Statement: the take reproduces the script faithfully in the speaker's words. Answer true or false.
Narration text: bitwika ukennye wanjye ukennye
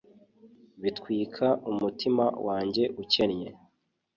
false